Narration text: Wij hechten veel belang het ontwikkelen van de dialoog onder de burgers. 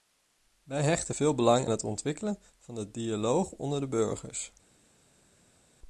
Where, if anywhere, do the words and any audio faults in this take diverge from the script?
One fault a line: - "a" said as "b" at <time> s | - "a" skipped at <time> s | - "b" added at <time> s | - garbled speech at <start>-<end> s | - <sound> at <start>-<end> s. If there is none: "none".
none